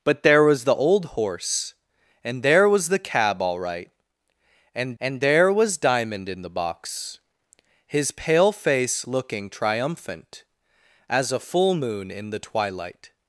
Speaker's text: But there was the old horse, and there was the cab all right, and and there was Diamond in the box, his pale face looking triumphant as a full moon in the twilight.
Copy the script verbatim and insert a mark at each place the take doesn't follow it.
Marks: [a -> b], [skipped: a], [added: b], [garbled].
But there was the old horse, and there was the cab all right, and and there was Diamond in the box, his pale face looking triumphant as a full moon in the twilight.